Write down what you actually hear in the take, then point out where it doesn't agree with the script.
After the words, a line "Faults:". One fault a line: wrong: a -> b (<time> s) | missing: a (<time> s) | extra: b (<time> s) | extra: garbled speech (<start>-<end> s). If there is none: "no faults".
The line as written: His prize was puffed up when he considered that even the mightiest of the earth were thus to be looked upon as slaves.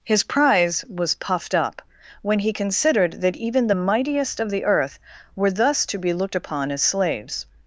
His prize was puffed up when he considered that even the mightiest of the earth were thus to be looked upon as slaves.
Faults:
no faults